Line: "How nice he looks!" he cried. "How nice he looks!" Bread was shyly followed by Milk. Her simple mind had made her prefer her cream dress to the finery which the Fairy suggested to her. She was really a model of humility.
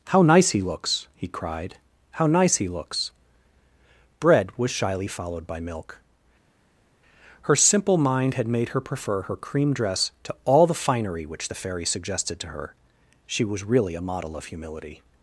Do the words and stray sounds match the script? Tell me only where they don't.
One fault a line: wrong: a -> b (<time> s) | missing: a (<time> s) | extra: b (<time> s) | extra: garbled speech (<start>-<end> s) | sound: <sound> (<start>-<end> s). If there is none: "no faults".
extra: all (10.4 s)